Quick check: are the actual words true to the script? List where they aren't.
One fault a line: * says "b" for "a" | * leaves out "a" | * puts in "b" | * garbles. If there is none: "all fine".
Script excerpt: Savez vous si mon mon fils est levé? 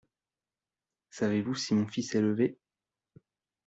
* leaves out "mon"